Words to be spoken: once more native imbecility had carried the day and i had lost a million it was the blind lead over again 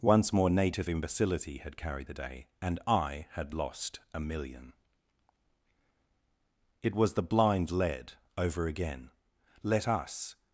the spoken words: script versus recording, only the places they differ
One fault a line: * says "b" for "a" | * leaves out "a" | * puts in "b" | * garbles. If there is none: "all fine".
* puts in "let us"